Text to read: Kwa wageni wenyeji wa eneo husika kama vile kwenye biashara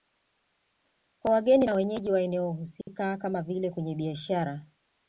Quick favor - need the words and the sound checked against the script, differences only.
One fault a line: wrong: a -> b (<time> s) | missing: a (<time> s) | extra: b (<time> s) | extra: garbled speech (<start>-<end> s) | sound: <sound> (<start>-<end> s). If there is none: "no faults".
extra: na (1.6 s)
sound: dropout (2.8-2.9 s)